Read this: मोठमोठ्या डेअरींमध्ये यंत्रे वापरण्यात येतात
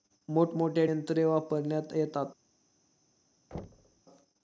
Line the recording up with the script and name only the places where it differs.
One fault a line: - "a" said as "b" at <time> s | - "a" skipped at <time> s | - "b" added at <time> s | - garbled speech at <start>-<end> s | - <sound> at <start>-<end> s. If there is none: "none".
- "डेअरींमध्ये" skipped at 0.9 s
- thud at 3.5-4.0 s